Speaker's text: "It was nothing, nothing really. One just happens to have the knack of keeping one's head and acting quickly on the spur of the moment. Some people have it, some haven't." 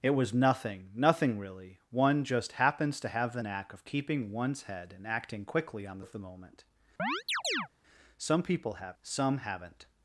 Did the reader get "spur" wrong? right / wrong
wrong